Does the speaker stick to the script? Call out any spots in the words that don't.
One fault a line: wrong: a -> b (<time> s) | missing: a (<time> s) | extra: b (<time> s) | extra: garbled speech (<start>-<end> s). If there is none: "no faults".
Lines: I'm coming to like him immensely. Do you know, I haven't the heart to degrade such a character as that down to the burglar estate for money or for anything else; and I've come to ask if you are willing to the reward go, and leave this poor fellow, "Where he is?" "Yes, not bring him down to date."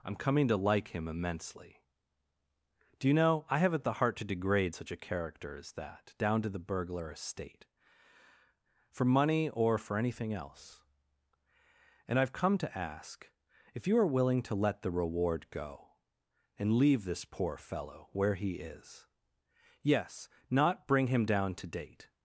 extra: let (14.5 s)